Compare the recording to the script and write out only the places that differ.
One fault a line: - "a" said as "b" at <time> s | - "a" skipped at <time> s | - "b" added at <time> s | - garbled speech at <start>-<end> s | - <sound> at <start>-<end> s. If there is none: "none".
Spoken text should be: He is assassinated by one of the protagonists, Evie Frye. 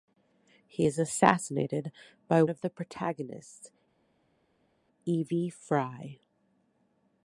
- "one" skipped at 2.4 s